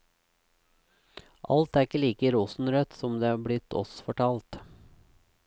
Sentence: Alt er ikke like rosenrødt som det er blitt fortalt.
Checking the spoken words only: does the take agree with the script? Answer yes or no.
no